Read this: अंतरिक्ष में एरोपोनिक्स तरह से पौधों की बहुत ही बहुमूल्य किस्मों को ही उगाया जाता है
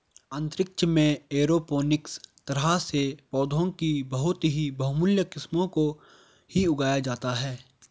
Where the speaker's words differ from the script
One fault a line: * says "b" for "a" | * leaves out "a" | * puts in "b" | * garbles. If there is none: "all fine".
all fine